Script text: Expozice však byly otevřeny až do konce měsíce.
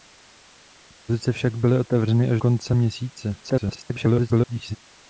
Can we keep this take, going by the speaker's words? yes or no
no